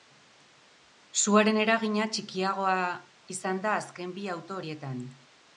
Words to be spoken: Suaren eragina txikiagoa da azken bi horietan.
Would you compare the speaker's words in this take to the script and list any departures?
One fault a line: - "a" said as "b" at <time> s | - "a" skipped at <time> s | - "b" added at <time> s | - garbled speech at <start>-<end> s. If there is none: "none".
- "izan" added at 3.4 s
- "auto" added at 4.4 s